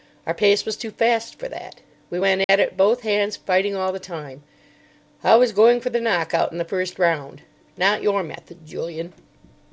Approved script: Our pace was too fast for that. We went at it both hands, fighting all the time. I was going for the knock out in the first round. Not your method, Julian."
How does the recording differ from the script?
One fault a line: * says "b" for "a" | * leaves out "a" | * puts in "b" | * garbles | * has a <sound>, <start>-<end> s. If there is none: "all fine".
* has a dropout, 2.4-2.5 s